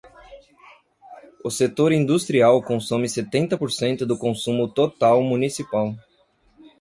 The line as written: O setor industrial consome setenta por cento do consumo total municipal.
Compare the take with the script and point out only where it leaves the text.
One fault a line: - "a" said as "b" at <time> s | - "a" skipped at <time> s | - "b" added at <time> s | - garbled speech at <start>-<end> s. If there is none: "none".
none